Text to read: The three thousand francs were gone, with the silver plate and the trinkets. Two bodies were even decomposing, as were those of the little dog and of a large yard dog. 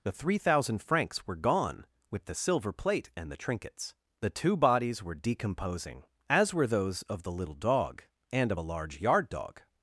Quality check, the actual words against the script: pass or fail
fail